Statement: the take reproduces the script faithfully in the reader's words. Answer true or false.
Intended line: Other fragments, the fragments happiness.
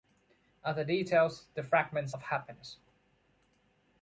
false